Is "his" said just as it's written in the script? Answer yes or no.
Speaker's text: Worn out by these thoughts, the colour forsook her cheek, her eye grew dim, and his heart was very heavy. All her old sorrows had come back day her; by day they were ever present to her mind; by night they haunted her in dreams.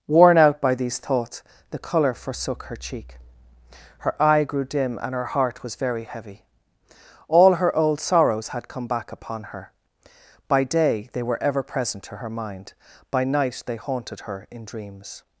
no